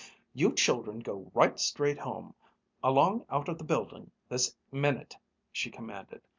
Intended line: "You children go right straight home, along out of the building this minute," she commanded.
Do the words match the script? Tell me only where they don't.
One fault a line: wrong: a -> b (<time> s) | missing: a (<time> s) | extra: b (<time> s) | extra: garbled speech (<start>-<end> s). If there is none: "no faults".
no faults